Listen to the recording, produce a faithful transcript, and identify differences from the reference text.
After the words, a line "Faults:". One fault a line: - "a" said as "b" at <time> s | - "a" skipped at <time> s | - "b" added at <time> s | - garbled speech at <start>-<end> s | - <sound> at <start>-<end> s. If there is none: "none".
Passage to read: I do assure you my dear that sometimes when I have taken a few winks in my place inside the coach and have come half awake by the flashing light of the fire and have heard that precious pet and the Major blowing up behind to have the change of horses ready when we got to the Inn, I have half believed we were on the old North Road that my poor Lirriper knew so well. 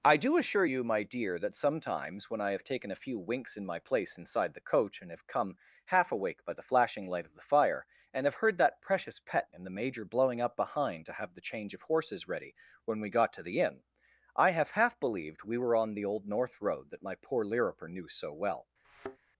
I do assure you my dear that sometimes when I have taken a few winks in my place inside the coach and have come half awake by the flashing light of the fire and have heard that precious pet and the Major blowing up behind to have the change of horses ready when we got to the Inn, I have half believed we were on the old North Road that my poor Lirriper knew so well.
Faults:
- thud at 18.8-19.2 s